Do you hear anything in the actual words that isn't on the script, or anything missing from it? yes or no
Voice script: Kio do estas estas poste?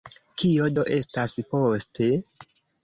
yes